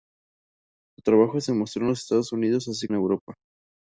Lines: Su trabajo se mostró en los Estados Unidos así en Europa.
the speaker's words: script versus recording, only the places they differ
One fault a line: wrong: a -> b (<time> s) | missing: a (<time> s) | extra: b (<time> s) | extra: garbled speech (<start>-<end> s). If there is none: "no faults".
no faults